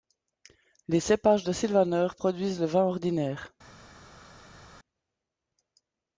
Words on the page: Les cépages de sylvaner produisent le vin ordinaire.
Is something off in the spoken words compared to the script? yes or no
no